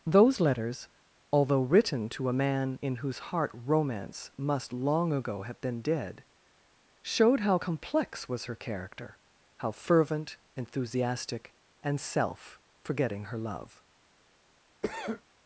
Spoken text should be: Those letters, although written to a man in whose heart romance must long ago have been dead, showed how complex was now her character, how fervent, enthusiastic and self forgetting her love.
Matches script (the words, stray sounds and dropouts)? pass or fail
fail